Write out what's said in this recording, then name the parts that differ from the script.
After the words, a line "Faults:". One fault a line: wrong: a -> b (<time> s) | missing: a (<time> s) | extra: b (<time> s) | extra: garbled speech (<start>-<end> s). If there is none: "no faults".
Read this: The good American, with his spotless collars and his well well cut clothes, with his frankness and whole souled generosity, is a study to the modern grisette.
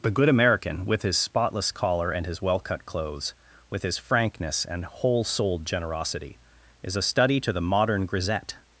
The good American, with his spotless collar and his well cut clothes, with his frankness and whole souled generosity, is a study to the modern grisette.
Faults:
wrong: collars -> collar (1.7 s)
missing: well (2.6 s)